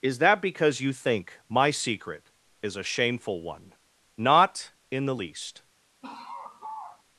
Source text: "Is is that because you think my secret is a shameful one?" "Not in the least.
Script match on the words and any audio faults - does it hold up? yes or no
no